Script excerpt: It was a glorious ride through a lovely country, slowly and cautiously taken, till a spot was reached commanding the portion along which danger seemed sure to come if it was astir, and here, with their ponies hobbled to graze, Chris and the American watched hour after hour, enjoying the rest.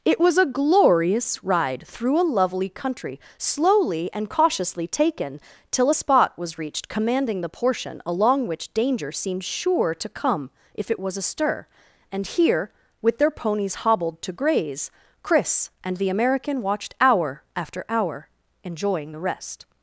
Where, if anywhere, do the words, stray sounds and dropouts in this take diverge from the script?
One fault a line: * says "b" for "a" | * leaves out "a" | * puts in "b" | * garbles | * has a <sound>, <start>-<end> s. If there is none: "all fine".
all fine